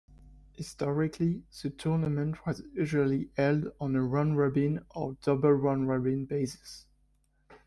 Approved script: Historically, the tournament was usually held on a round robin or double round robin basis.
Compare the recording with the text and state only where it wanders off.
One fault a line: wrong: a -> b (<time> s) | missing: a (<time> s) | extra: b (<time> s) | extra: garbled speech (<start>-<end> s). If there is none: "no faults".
no faults